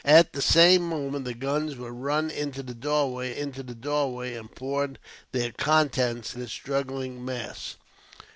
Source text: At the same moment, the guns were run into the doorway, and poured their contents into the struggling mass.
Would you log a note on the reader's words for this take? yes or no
yes